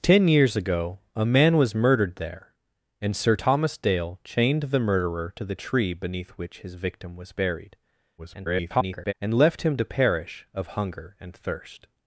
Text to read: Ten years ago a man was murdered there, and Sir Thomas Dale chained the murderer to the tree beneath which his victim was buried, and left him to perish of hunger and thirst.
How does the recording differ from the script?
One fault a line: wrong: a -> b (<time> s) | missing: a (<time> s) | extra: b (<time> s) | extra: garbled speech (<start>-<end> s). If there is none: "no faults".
extra: garbled speech (8.2-9.1 s)